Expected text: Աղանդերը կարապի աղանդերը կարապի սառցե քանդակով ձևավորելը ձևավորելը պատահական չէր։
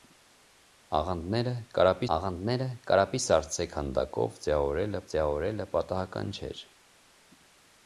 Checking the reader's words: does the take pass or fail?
pass